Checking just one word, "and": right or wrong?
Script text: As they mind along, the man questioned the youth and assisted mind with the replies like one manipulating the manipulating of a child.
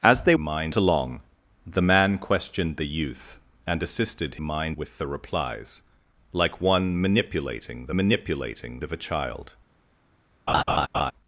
right